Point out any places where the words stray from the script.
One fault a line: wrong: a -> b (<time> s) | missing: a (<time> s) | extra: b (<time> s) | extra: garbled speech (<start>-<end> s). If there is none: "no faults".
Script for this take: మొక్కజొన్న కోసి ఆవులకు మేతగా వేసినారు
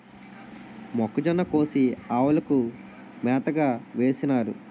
no faults